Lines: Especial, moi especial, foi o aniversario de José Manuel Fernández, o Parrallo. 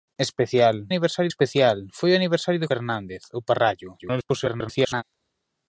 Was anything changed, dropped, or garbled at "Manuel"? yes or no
yes